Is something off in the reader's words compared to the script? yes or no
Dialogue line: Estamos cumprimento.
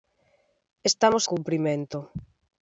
no